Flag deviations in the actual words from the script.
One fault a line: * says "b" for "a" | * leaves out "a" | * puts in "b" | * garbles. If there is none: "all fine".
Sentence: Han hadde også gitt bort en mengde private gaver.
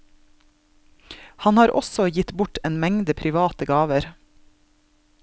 * says "har" for "hadde"